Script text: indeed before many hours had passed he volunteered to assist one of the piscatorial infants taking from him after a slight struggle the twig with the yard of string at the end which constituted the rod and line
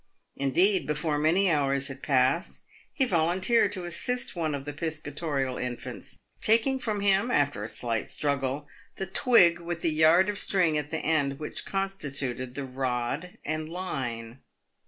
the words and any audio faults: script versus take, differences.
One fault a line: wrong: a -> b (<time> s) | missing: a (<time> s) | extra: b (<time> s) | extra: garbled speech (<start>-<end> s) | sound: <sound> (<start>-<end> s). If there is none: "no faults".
no faults